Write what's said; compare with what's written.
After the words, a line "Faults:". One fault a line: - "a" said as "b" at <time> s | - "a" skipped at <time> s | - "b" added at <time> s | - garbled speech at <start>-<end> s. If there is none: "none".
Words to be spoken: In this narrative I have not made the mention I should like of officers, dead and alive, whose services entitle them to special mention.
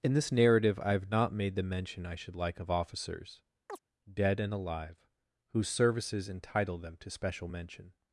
In this narrative I have not made the mention I should like of officers, dead and alive, whose services entitle them to special mention.
Faults:
none